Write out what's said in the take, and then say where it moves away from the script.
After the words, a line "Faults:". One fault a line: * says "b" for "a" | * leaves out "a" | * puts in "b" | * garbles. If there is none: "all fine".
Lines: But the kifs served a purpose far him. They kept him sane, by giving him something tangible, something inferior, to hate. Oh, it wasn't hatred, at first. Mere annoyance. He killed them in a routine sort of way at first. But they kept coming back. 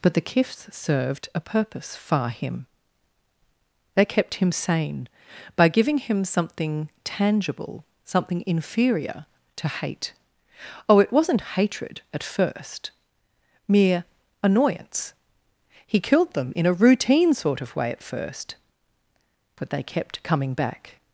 But the kifs served a purpose far him. They kept him sane, by giving him something tangible, something inferior, to hate. Oh, it wasn't hatred, at first. Mere annoyance. He killed them in a routine sort of way at first. But they kept coming back.
Faults:
all fine